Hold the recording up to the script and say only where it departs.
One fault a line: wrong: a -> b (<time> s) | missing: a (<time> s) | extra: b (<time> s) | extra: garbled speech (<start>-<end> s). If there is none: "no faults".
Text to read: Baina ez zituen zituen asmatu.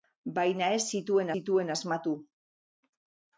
no faults